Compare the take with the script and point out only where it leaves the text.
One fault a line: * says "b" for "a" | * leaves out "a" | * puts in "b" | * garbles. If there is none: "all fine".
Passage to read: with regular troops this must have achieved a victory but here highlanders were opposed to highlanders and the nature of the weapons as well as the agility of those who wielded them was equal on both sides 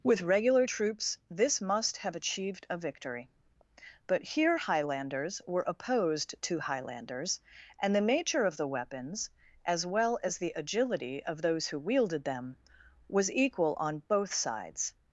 all fine